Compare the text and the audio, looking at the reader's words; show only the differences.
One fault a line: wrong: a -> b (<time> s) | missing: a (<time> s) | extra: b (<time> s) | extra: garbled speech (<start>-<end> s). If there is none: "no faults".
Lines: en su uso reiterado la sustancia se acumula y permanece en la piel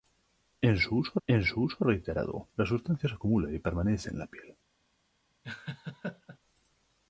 extra: en su uso (1.3 s)